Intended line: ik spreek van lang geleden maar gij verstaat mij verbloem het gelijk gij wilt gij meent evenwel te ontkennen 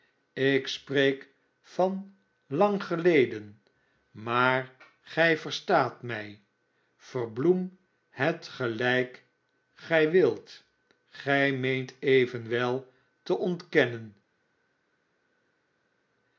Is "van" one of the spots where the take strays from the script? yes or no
no